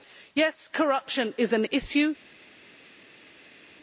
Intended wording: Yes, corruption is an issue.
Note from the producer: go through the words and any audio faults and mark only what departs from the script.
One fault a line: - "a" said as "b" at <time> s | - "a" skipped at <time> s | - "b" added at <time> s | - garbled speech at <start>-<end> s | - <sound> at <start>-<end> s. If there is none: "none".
none